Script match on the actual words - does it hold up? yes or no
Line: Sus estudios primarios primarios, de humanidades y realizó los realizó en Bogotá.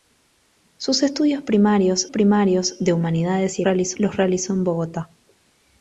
yes